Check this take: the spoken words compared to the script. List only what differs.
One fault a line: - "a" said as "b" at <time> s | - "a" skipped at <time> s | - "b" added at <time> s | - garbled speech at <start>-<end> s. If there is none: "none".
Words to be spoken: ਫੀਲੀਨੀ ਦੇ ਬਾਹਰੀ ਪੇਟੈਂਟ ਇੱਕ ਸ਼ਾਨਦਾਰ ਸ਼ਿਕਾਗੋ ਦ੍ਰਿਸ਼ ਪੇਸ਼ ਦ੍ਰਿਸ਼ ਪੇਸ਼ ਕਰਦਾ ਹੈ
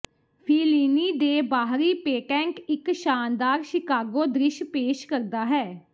- "ਦ੍ਰਿਸ਼ ਪੇਸ਼" skipped at 5.1 s